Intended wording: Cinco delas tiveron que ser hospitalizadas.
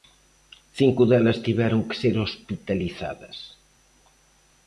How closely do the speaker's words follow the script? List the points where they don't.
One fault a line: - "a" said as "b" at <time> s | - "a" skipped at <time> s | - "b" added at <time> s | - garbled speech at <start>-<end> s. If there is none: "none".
none